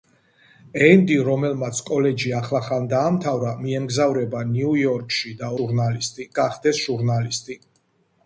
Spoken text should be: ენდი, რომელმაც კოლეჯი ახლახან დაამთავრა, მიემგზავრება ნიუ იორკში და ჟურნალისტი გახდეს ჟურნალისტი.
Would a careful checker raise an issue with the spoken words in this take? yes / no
no